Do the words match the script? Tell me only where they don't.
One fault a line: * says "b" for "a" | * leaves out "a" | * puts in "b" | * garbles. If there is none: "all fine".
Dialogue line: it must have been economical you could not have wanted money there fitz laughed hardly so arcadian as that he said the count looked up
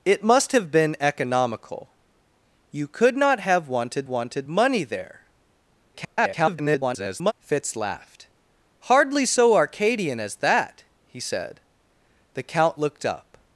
* puts in "wanted"
* garbles